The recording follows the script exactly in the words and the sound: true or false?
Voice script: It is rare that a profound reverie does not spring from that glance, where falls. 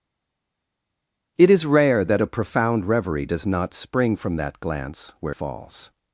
true